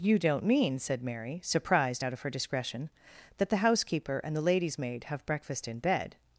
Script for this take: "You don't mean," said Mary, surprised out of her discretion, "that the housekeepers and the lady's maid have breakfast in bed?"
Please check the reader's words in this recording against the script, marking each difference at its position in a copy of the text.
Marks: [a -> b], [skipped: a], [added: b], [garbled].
"You don't mean," said Mary, surprised out of her discretion, "that the [housekeepers -> housekeeper] and the lady's maid have breakfast in bed?"